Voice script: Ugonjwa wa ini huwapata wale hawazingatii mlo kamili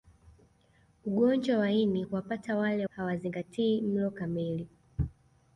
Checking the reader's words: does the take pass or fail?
pass